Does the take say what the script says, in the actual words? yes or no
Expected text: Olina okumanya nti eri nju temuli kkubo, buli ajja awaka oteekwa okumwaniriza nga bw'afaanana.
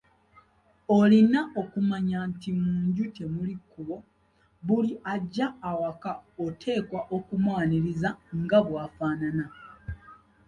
no